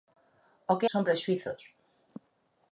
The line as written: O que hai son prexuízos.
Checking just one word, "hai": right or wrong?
wrong